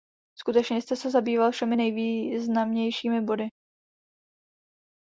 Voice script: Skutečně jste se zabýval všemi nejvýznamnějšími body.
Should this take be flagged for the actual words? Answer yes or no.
no